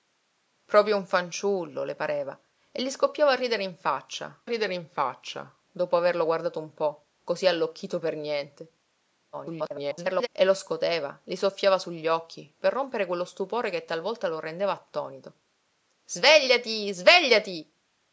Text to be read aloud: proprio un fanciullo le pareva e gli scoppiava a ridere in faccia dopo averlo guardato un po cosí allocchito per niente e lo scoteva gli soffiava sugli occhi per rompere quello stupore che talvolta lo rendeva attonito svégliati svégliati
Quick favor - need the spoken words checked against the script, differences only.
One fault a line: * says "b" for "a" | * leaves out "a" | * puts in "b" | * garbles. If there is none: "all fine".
* puts in "ridere in faccia"
* garbles